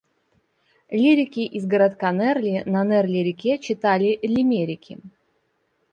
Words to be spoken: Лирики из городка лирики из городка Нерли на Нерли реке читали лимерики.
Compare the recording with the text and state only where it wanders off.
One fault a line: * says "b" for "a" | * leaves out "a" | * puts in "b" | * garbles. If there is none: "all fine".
* leaves out "лирики из городка"